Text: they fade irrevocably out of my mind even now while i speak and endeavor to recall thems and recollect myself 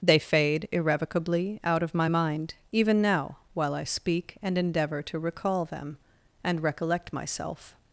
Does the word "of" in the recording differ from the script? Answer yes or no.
no